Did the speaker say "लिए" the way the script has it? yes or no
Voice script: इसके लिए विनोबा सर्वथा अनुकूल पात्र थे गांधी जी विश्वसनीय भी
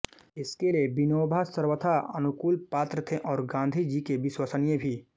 yes